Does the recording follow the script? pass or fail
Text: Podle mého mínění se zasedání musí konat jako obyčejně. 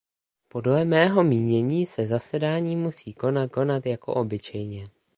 fail